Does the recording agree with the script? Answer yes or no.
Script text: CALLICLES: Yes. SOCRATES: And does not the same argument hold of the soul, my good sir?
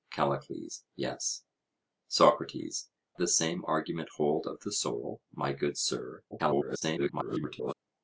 no